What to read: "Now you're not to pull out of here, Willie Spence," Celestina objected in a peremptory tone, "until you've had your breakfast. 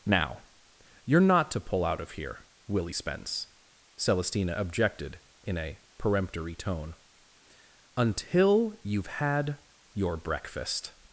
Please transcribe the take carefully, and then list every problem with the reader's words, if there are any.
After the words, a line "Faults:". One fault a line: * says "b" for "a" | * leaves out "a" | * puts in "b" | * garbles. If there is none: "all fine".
"Now you're not to pull out of here, Willie Spence," Celestina objected in a peremptory tone, "until you've had your breakfast.
Faults:
all fine